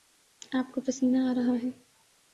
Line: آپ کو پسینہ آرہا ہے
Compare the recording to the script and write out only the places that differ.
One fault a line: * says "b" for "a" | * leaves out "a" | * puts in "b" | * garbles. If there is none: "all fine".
all fine